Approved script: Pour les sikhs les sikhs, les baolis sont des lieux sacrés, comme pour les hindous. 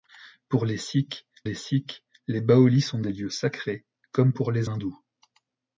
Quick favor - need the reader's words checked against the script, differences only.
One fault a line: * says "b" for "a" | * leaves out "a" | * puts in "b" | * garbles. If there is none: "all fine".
all fine